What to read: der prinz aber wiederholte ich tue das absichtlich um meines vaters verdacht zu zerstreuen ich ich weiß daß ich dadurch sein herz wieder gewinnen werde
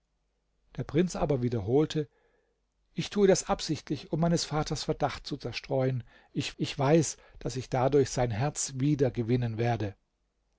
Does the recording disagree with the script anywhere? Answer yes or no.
no